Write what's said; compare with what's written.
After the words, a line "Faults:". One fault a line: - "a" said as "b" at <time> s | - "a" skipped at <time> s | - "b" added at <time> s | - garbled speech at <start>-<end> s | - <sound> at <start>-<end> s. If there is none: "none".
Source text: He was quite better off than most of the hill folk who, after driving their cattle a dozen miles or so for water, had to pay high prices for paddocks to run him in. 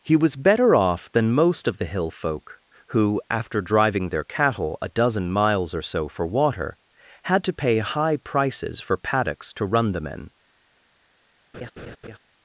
He was better off than most of the hill folk who, after driving their cattle a dozen miles or so for water, had to pay high prices for paddocks to run them in.
Faults:
- "quite" skipped at 0.3 s
- "him" said as "them" at 9.9 s
- laugh at 11.5-12.2 s